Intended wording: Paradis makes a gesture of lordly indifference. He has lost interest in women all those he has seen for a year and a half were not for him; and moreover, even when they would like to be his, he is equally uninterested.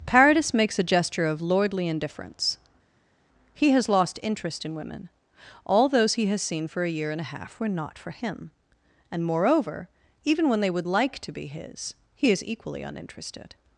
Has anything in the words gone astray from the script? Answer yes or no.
no